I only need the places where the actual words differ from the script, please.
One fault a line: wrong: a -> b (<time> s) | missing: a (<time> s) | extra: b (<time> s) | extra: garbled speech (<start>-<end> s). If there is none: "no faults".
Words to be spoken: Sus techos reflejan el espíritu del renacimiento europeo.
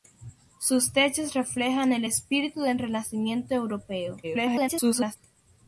extra: garbled speech (4.2-5.2 s)